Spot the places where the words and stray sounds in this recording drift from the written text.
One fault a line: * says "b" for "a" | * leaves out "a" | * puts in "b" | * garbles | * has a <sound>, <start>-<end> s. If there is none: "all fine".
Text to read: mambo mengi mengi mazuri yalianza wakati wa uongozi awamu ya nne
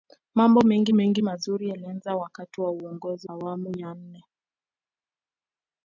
all fine